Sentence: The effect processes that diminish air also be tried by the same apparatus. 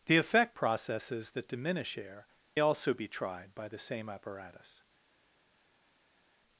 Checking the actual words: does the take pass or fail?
pass